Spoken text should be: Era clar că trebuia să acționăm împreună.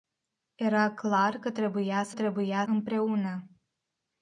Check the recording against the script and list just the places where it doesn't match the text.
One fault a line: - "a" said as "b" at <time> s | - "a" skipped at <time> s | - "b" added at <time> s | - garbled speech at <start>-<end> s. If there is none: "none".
- "acționăm" said as "trebuia" at 2.1 s